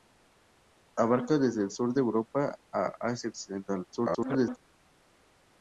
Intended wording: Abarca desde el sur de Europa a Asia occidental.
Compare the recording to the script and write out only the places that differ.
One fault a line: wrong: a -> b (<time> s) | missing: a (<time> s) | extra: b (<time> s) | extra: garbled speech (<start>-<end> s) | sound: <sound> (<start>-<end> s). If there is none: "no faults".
extra: garbled speech (3.9-4.6 s)